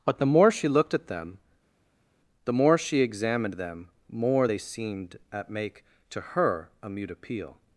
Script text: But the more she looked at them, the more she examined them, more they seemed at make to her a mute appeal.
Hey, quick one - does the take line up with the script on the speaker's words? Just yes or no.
yes